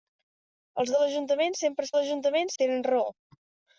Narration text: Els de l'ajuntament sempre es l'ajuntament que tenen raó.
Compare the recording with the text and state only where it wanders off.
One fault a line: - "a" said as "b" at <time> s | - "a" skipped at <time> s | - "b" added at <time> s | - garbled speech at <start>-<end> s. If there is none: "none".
none